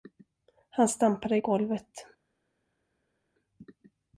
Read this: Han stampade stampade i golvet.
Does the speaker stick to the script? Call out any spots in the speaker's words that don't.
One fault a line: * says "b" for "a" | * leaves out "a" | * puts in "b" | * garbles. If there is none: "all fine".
* leaves out "stampade"